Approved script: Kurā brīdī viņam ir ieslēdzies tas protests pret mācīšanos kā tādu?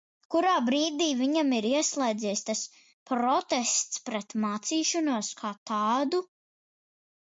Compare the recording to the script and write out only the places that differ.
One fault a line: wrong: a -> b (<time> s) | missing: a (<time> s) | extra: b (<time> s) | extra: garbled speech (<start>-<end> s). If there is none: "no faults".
no faults